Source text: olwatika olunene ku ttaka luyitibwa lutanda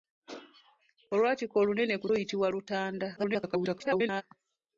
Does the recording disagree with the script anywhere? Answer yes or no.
yes